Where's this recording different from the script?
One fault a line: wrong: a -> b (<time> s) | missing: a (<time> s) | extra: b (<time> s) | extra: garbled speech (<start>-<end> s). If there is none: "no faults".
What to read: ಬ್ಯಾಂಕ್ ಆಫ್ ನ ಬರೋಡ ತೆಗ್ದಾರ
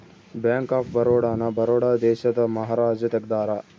extra: ಬರೋಡ (0.9 s)
extra: ದೇಶದ ಮಹಾರಾಜ (2.0 s)